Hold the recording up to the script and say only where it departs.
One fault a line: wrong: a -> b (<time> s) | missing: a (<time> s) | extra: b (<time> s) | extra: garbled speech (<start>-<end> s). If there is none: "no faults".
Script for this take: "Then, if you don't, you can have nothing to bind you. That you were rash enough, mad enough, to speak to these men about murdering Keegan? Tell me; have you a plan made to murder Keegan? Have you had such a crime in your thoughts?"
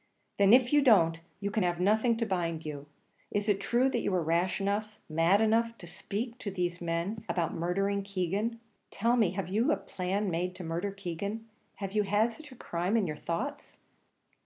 extra: Is it true (3.3 s)